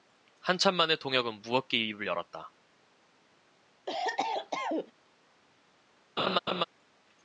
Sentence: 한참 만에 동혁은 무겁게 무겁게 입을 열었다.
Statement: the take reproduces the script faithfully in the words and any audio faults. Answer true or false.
false